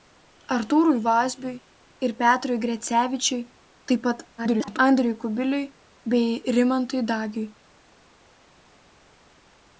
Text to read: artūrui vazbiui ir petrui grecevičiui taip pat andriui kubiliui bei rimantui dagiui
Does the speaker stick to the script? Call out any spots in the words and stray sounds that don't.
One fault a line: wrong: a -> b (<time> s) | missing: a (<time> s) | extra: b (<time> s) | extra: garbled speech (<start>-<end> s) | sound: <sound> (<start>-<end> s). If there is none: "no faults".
extra: garbled speech (4.4-4.8 s)